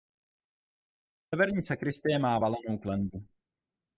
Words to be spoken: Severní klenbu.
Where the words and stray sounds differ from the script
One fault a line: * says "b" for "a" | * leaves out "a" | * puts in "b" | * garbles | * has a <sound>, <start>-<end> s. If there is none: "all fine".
* puts in "sakristie má valenou"